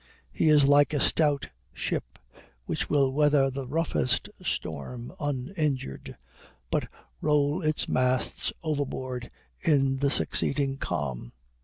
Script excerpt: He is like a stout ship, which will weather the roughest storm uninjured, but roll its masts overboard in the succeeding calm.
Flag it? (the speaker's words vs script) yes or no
no